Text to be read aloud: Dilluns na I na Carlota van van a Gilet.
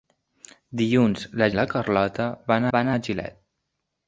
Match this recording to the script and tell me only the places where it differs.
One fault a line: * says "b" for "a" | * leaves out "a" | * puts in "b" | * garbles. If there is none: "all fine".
all fine